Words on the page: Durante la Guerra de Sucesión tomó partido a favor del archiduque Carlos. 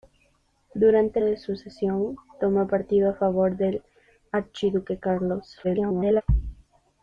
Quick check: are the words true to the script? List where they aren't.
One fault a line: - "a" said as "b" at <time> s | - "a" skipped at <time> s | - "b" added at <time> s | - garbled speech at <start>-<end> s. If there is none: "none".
- "la Guerra" skipped at 1.2 s
- garbled speech at 5.6-6.2 s